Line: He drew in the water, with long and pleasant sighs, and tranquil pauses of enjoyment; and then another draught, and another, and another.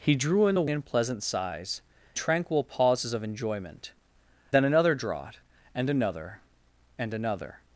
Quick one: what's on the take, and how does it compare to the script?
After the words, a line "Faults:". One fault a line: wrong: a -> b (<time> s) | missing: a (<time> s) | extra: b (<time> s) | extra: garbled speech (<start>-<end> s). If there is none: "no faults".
He drew in the and pleasant sighs, tranquil pauses of enjoyment; then another draught, and another, and another.
Faults:
missing: water with long (0.7 s)
missing: and (1.8 s)
missing: and (3.9 s)